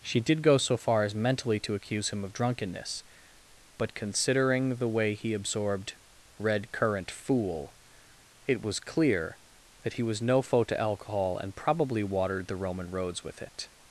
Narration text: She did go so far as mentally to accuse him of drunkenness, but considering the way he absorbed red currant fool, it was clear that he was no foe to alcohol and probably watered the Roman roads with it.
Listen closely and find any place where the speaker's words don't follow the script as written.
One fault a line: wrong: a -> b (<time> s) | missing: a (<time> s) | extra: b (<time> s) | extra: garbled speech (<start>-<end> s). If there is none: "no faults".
no faults